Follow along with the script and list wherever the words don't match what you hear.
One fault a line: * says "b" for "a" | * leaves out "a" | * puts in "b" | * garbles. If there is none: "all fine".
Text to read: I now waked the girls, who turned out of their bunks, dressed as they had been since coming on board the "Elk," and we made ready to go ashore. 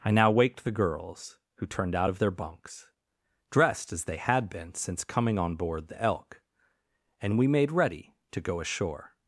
all fine